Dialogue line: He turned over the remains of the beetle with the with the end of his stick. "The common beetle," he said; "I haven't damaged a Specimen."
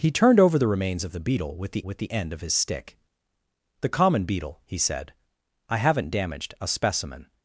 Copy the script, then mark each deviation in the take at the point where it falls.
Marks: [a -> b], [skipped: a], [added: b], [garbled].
He turned over the remains of the beetle with the with the end of his stick. "The common beetle," he said; "I haven't damaged a Specimen."